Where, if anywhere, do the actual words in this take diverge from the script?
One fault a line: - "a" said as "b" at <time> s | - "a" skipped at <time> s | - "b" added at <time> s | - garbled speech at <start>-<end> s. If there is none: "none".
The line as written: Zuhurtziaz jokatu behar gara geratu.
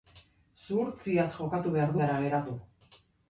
none